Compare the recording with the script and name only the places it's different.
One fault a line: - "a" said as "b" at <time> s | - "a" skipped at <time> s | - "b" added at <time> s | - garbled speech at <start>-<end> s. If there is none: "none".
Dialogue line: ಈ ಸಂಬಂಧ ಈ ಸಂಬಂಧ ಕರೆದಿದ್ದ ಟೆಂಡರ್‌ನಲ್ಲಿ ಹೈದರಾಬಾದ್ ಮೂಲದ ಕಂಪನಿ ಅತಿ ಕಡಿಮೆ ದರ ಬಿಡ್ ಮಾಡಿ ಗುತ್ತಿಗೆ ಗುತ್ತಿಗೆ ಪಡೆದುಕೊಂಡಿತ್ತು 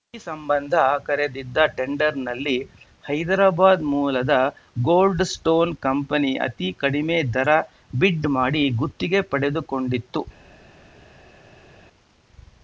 - "ಈ ಸಂಬಂಧ" skipped at 0.8 s
- "ಗೋಲ್ಡ್ ಸ್ಟೋನ್" added at 4.8 s
- "ಗುತ್ತಿಗೆ" skipped at 9.2 s